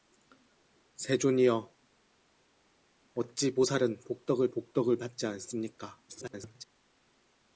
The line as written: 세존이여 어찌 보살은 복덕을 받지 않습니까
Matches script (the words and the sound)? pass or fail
fail